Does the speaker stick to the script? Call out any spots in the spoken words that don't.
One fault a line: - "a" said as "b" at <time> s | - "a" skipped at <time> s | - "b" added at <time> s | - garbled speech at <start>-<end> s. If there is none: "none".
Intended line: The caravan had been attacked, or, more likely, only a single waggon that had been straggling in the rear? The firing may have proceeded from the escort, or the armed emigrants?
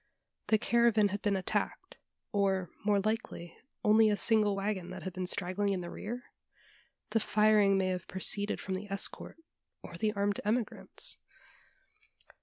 none